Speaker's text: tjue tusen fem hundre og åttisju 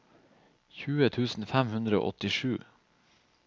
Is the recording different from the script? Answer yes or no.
no